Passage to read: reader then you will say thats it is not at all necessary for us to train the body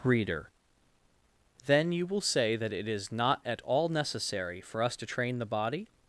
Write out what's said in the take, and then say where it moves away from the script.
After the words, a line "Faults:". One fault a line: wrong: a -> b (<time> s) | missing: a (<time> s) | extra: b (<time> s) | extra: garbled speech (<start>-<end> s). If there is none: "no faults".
reader then you will say that it is not at all necessary for us to train the body
Faults:
wrong: thats -> that (2.5 s)